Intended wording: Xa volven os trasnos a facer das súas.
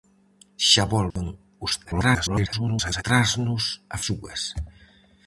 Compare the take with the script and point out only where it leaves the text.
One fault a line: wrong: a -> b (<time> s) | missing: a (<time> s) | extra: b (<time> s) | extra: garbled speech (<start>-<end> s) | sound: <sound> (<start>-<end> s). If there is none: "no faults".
sound: dropout (1.1-1.2 s)
extra: garbled speech (1.8-3.0 s)
missing: facer das (4.0 s)